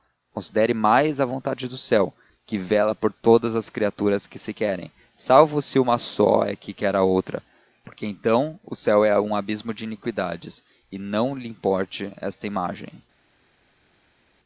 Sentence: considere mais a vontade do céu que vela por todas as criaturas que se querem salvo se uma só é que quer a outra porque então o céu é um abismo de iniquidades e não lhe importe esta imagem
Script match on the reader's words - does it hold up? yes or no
yes